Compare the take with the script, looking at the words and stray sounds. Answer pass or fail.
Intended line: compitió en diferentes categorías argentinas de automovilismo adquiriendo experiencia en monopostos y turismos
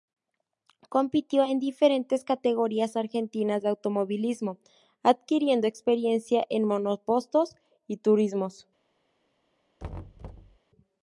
fail